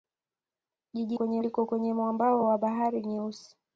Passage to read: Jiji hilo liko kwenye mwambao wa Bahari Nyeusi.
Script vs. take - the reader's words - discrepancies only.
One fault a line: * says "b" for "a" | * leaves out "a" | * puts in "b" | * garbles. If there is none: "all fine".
* says "kwenye" for "hilo"